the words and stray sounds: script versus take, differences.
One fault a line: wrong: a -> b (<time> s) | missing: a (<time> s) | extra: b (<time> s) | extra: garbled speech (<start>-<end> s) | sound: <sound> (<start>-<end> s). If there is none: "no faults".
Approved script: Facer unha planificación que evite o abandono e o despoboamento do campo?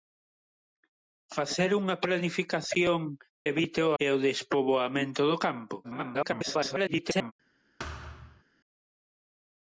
missing: que (3.0 s)
missing: abandono (3.9 s)
extra: garbled speech (5.8-7.3 s)
sound: thud (7.8-8.4 s)